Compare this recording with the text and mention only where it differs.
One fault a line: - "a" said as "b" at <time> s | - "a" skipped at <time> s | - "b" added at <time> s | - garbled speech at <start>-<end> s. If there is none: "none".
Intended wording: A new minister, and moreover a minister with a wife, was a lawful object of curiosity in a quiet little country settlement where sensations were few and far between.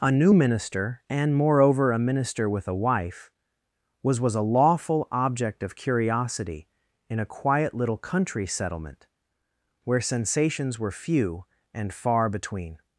- "was" added at 4.2 s